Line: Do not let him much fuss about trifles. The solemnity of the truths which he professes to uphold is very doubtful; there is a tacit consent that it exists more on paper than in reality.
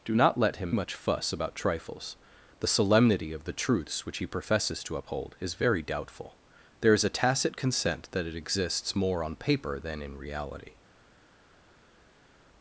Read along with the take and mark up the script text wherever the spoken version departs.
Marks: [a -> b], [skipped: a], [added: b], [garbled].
Do not let him much fuss about trifles. The solemnity of the truths which he professes to uphold is very doubtful; there is a tacit consent that it exists more on paper than in reality.